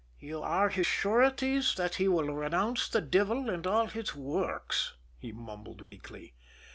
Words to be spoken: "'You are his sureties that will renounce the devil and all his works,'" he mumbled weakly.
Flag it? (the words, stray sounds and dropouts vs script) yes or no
yes